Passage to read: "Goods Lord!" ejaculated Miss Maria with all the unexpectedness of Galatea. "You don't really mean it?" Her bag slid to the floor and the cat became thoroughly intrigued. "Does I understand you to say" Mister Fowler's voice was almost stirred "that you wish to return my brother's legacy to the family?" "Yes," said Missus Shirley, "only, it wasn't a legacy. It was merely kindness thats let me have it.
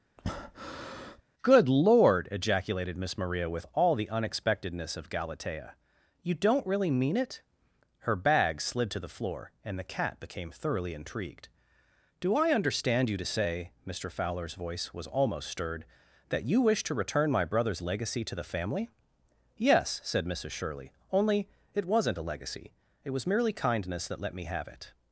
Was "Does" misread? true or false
true